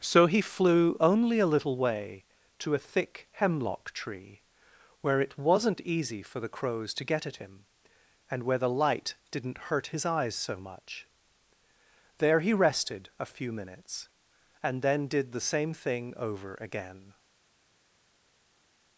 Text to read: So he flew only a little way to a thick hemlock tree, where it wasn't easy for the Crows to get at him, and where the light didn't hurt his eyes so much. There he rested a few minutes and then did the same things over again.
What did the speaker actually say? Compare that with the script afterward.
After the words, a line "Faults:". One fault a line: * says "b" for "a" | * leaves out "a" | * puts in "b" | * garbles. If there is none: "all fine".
So he flew only a little way to a thick hemlock tree, where it wasn't easy for the Crows to get at him, and where the light didn't hurt his eyes so much. There he rested a few minutes and then did the same thing over again.
Faults:
* says "thing" for "things"